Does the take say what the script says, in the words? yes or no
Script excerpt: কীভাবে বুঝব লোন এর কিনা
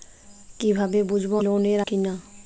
yes